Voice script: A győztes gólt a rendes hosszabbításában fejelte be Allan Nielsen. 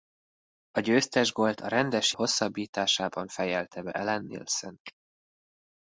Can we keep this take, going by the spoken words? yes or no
yes